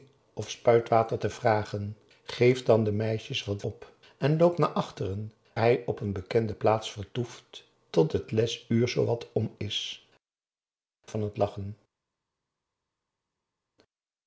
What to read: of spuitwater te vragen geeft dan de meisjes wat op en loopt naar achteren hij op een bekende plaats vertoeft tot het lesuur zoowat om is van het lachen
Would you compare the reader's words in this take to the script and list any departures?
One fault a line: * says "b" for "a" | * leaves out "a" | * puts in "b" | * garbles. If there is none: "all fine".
all fine